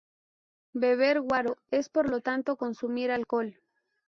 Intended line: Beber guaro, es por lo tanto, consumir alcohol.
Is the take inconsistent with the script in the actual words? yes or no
no